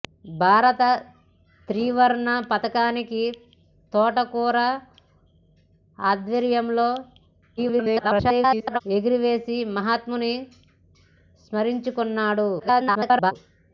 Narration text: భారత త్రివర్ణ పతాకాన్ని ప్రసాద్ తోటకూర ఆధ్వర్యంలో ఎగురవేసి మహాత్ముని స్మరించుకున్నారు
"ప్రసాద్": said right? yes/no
no